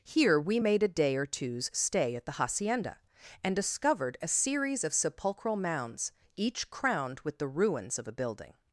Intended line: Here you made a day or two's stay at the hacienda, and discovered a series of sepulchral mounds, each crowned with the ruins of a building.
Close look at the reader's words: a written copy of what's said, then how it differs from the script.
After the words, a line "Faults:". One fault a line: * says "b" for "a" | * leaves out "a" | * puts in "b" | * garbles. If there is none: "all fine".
Here we made a day or two's stay at the hacienda, and discovered a series of sepulchral mounds, each crowned with the ruins of a building.
Faults:
* says "we" for "you"